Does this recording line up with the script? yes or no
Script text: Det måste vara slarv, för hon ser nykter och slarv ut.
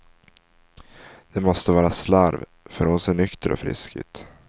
no